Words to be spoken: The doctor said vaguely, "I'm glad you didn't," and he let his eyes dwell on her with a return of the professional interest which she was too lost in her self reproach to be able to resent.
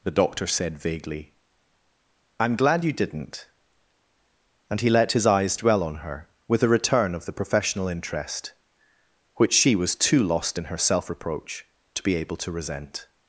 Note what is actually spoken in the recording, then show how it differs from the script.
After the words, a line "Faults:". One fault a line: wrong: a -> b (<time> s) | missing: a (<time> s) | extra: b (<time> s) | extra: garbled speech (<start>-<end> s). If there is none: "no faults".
The doctor said vaguely, "I'm glad you didn't," and he let his eyes dwell on her with a return of the professional interest which she was too lost in her self reproach to be able to resent.
Faults:
no faults